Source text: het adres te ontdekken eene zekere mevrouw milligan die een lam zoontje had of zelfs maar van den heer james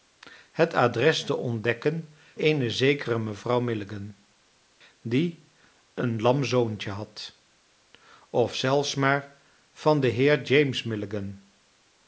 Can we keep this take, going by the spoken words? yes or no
yes